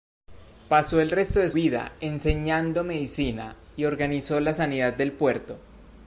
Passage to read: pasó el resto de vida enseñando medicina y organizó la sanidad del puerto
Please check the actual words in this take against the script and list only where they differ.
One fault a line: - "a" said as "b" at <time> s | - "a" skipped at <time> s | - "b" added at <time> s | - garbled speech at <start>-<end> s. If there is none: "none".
none